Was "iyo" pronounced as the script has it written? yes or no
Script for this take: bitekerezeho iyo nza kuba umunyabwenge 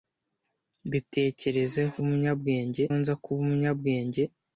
no